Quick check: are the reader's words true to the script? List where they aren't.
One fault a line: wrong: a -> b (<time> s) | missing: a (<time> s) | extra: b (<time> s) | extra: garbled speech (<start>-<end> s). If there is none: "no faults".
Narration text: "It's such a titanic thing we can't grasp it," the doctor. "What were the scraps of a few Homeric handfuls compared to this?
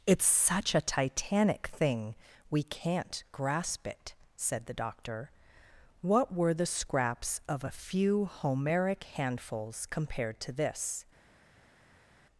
extra: said (4.3 s)